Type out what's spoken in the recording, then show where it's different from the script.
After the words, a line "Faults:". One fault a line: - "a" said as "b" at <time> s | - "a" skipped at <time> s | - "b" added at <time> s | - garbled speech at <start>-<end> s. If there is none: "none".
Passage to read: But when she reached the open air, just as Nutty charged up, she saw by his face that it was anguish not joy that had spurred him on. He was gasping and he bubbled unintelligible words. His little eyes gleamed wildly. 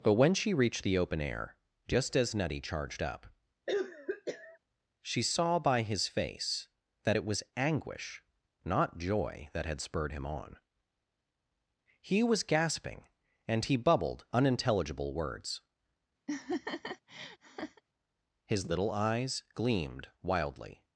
But when she reached the open air, just as Nutty charged up, she saw by his face that it was anguish not joy that had spurred him on. He was gasping and he bubbled unintelligible words. His little eyes gleamed wildly.
Faults:
none